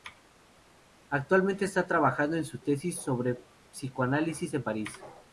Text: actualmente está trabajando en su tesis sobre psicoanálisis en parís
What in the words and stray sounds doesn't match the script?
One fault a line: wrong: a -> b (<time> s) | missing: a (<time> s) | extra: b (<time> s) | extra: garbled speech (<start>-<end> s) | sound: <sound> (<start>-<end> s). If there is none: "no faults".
no faults